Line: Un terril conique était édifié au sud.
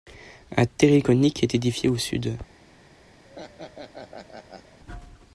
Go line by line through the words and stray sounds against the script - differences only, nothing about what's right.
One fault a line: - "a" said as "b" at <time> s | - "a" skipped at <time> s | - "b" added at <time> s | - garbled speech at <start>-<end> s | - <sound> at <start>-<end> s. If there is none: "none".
- "était" said as "est" at 1.4 s
- laugh at 3.2-4.8 s